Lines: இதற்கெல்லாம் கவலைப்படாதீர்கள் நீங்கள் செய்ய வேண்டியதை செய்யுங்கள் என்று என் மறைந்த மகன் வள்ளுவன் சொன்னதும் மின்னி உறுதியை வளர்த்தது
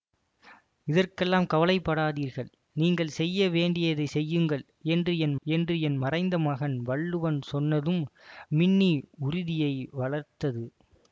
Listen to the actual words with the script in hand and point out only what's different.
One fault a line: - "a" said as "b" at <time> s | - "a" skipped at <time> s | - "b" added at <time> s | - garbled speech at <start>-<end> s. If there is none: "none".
- "என்று என்" added at 5.5 s